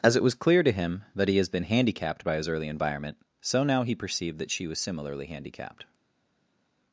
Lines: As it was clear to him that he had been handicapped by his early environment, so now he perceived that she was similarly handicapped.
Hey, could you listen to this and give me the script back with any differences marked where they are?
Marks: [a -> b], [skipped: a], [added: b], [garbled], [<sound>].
As it was clear to him that he [had -> has] been handicapped by his early environment, so now he perceived that she was similarly handicapped.